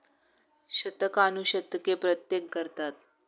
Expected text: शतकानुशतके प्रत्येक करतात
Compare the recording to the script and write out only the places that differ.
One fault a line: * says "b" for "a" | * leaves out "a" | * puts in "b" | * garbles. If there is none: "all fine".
all fine